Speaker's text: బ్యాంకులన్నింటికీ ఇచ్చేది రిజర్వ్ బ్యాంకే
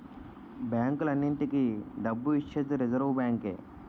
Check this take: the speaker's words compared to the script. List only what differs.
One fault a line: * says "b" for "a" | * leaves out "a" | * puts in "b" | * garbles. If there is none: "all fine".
* puts in "డబ్బు"